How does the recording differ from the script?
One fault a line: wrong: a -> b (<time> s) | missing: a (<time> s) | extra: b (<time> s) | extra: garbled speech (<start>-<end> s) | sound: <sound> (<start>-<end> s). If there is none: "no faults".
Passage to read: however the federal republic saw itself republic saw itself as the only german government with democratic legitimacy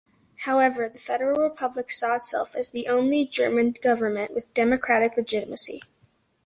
missing: republic saw itself (2.5 s)